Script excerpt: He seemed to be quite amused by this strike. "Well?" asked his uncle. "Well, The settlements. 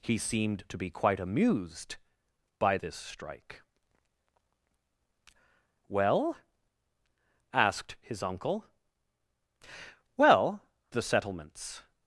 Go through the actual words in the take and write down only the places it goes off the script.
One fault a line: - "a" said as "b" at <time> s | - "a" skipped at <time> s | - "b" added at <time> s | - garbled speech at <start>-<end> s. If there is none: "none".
none